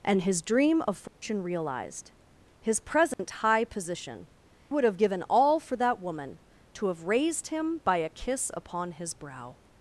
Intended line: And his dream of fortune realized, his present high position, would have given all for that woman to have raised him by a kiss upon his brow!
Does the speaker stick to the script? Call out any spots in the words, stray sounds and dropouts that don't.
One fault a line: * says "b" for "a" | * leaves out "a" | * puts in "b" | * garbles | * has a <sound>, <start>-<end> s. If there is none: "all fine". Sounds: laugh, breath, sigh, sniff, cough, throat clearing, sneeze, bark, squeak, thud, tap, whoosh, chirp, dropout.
* has a dropout, 1.1-1.2 s
* has a dropout, 3.1-3.2 s